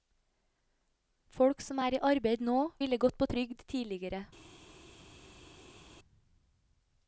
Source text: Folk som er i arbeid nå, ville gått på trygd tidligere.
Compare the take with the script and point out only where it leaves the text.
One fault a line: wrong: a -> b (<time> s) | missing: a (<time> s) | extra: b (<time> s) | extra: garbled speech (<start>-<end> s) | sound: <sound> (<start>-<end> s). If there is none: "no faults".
no faults